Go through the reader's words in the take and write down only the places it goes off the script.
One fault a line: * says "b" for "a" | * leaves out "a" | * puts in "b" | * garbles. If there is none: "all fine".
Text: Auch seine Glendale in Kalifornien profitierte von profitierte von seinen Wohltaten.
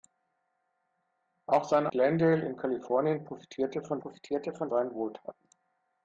all fine